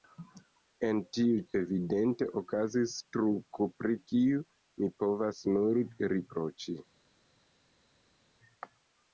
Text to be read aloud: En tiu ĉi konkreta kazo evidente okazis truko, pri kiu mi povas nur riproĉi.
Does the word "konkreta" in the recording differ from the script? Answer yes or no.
yes